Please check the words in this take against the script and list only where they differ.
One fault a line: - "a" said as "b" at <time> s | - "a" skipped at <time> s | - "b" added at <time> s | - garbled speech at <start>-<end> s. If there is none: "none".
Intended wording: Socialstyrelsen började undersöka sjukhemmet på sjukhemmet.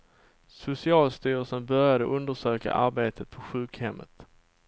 - "sjukhemmet" said as "arbetet" at 2.7 s